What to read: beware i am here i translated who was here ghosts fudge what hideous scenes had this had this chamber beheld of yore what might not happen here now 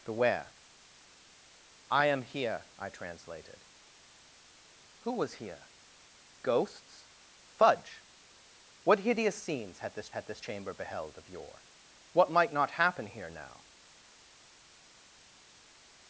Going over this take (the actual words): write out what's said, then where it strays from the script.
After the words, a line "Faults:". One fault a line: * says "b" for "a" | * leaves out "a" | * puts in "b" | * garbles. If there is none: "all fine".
beware i am here i translated who was here ghosts fudge what hideous scenes had this had this chamber beheld of yore what might not happen here now
Faults:
all fine